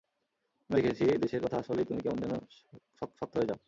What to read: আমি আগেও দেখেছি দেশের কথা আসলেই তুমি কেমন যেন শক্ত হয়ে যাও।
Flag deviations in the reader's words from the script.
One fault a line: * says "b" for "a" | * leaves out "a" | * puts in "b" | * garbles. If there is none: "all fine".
* leaves out "আগেও"
* puts in "শক্ত"